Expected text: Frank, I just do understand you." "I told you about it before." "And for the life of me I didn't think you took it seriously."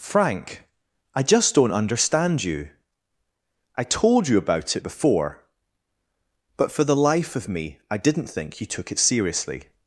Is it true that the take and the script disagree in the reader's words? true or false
true